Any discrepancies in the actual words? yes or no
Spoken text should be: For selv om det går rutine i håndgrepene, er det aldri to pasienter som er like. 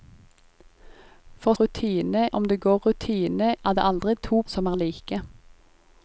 yes